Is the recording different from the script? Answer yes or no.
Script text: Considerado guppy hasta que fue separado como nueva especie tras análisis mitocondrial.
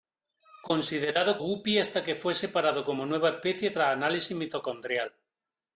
no